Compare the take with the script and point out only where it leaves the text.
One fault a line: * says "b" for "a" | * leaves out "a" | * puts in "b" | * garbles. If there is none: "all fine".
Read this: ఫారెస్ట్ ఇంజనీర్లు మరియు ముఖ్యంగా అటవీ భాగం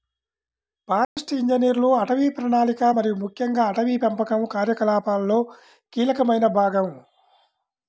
* puts in "అటవీ ప్రణాళిక"
* puts in "పెంపకం కార్యకలాపాలలో కీలకమైన"